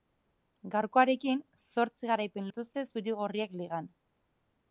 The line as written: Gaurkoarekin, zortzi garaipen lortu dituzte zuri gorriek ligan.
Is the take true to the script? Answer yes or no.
no